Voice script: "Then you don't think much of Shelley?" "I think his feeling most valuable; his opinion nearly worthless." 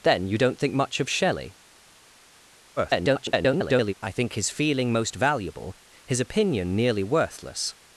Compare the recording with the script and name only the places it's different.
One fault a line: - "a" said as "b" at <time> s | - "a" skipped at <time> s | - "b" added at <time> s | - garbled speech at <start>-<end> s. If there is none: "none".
- garbled speech at 2.8-3.9 s